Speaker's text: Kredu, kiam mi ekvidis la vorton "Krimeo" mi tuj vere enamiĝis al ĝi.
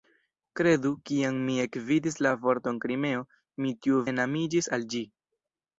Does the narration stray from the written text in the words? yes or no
yes